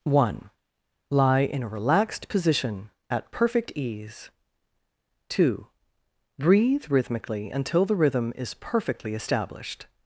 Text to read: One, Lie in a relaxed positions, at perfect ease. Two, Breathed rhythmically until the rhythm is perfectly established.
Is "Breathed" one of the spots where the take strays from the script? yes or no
yes